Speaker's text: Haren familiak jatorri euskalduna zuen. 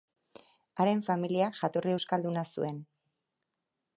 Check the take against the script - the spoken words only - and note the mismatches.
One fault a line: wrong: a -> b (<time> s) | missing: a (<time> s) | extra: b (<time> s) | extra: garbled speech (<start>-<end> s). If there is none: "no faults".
no faults